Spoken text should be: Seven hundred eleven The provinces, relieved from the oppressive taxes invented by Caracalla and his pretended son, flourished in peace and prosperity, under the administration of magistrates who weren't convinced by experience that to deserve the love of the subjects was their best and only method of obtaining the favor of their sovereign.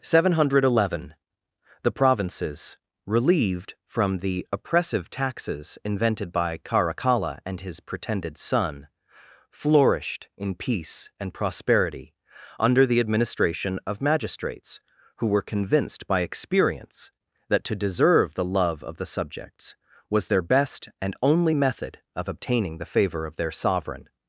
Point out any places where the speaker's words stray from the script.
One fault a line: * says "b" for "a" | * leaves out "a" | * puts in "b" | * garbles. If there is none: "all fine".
* says "were" for "weren't"